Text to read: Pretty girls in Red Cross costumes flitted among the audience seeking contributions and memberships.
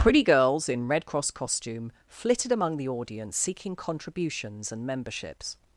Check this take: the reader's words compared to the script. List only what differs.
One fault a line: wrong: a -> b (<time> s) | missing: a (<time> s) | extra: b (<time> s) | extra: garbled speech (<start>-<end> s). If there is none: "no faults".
wrong: costumes -> costume (1.3 s)